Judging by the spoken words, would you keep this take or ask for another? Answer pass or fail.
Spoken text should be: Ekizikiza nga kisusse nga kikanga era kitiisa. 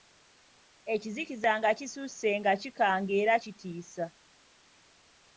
pass